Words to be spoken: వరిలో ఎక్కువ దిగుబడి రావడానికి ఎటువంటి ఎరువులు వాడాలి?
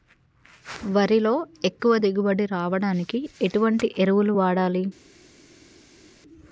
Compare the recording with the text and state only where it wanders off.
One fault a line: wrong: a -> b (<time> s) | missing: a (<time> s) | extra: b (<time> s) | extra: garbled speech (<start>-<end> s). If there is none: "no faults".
no faults